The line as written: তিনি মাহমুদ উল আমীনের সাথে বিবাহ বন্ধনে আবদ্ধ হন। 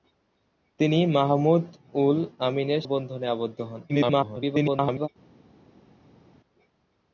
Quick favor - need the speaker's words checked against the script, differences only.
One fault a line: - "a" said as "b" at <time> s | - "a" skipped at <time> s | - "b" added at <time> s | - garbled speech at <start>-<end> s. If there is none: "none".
- "সাথে বিবাহ" skipped at 2.8 s
- garbled speech at 3.9-5.1 s